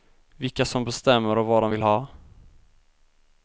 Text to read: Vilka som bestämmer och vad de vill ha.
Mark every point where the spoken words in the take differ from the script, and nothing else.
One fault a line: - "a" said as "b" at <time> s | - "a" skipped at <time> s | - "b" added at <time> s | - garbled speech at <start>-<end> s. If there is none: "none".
none